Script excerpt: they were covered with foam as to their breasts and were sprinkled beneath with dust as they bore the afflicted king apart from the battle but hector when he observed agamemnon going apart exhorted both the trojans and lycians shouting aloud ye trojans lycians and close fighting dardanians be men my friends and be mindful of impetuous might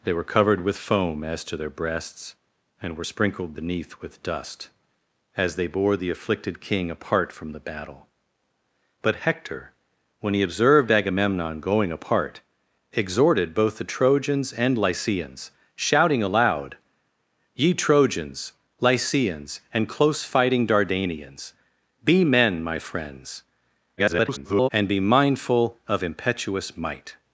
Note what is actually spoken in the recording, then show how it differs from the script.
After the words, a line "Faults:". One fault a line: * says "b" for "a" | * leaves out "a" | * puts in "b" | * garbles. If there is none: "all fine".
they were covered with foam as to their breasts and were sprinkled beneath with dust as they bore the afflicted king apart from the battle but hector when he observed agamemnon going apart exhorted both the trojans and lycians shouting aloud ye trojans lycians and close fighting dardanians be men my friends [garbled] and be mindful of impetuous might
Faults:
* garbles